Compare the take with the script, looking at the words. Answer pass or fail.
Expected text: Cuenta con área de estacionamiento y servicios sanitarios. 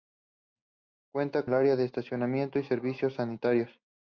fail